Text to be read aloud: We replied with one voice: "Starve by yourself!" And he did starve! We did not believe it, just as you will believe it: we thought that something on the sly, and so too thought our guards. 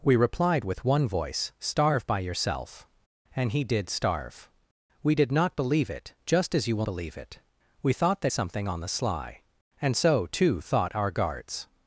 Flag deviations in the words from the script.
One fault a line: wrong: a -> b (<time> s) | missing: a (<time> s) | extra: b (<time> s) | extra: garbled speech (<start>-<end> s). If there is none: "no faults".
no faults